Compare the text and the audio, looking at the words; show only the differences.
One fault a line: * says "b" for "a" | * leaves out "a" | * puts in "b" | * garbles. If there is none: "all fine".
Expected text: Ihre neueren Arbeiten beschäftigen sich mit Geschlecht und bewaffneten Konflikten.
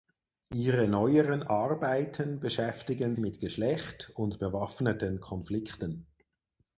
* leaves out "sich"